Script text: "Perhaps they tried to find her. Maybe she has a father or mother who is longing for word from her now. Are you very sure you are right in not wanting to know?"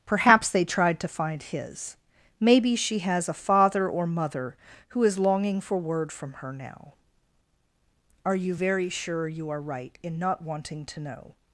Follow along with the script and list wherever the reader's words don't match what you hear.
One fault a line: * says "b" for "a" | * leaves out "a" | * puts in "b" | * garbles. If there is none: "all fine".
* says "his" for "her"